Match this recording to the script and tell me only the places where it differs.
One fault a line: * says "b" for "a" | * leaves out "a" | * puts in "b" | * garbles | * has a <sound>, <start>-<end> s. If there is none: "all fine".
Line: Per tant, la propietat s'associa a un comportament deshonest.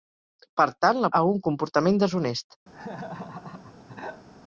* leaves out "propietat s'associa"
* has a laugh, 2.7-4.3 s